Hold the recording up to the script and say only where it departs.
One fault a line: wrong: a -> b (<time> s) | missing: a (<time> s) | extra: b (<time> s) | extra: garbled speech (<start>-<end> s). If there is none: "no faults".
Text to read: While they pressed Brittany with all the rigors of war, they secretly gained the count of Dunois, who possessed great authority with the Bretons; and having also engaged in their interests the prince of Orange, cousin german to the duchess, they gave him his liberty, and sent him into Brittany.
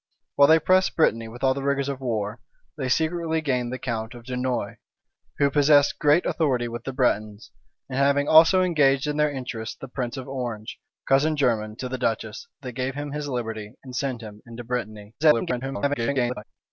extra: garbled speech (15.2-16.4 s)